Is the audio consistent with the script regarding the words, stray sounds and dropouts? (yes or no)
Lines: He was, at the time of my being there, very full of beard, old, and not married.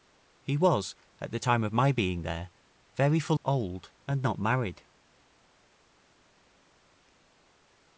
no